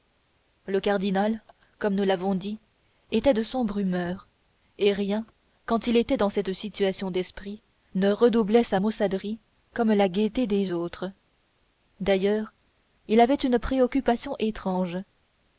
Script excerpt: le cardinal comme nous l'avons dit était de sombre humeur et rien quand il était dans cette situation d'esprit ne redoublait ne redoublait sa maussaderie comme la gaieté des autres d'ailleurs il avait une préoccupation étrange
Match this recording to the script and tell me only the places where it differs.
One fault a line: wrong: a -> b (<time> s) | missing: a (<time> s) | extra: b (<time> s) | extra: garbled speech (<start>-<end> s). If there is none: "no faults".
missing: ne redoublait (8.6 s)